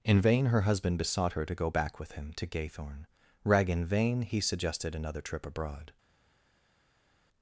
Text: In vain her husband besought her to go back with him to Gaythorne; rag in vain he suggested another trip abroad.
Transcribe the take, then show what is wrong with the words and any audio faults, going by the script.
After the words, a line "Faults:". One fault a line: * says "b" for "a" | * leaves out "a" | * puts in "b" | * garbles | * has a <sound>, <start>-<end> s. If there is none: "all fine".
In vain her husband besought her to go back with him to Gaythorne; rag in vain he suggested another trip abroad.
Faults:
all fine